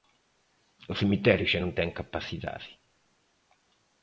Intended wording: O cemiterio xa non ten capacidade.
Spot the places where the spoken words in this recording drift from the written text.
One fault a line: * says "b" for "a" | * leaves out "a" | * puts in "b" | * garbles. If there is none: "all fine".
all fine